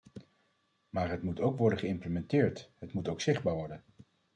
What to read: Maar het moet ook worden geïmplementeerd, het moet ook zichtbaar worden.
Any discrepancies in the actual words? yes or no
no